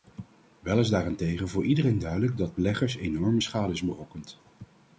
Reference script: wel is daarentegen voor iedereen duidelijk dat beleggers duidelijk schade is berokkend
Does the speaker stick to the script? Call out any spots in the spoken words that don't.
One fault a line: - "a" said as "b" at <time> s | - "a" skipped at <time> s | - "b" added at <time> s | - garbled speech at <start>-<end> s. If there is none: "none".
- "duidelijk" said as "enorme" at 3.0 s